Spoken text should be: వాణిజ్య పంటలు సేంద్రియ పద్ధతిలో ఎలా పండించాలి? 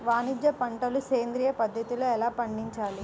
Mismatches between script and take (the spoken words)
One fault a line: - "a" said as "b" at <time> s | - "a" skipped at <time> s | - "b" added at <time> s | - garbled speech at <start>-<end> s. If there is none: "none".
none